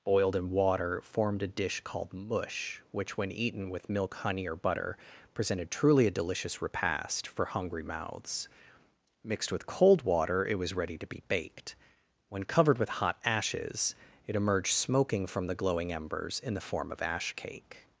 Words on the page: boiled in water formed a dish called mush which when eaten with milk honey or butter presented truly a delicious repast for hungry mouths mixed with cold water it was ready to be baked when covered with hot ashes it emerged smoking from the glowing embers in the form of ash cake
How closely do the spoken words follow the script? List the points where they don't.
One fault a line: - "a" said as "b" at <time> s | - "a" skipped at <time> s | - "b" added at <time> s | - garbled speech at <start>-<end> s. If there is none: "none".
none